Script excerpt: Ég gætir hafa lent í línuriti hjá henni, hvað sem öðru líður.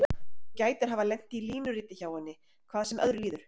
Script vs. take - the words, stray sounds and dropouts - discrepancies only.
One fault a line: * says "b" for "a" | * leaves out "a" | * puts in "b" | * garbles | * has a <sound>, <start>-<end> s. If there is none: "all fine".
* says "Þú" for "Ég"